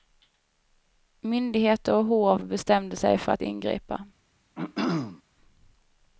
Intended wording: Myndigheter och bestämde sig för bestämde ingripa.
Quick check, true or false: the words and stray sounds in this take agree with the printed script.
false